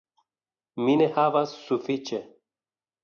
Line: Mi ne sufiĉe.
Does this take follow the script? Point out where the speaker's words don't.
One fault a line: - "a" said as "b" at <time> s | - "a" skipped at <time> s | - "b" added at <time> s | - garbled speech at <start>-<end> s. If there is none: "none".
- "havas" added at 1.1 s